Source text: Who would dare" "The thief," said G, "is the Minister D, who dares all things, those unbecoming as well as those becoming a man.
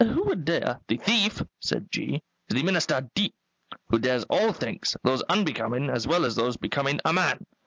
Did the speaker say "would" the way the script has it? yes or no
yes